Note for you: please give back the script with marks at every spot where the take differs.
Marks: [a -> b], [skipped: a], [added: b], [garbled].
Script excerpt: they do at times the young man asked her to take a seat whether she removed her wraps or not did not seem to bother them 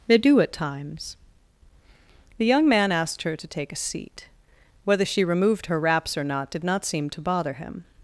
they do at times the young man asked her to take a seat whether she removed her wraps or not did not seem to bother [them -> him]